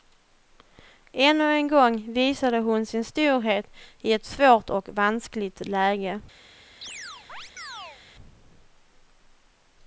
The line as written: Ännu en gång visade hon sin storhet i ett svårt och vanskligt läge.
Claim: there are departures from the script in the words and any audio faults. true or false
true